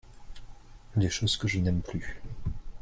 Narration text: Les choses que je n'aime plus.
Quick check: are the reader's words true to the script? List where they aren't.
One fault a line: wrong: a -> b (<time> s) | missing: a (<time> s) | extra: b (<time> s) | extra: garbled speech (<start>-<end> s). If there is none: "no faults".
no faults